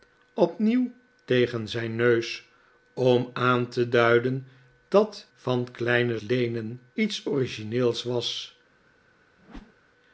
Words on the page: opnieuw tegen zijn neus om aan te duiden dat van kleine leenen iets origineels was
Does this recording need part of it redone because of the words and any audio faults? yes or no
yes